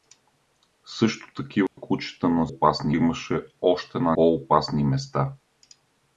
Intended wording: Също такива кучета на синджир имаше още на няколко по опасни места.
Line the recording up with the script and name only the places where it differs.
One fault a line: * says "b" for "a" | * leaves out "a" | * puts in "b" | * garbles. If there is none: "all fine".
* says "опасни" for "синджир"
* leaves out "няколко"